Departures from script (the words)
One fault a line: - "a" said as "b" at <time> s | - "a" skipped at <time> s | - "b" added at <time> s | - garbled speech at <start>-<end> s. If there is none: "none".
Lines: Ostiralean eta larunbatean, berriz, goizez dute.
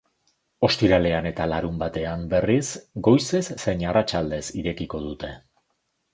- "zein arratsaldez irekiko" added at 3.6 s